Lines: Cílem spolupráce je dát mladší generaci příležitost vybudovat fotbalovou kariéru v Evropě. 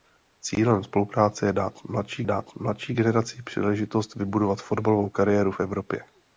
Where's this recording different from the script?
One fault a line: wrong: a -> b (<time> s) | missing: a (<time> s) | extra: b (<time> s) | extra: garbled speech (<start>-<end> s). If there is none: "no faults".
extra: dát mladší (2.3 s)